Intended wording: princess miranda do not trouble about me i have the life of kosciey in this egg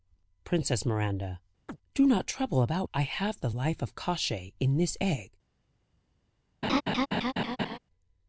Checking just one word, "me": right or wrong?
wrong